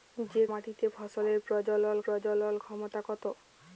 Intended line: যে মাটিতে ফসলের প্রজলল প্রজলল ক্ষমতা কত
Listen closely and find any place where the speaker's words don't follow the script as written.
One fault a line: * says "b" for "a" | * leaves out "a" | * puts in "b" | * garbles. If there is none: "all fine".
all fine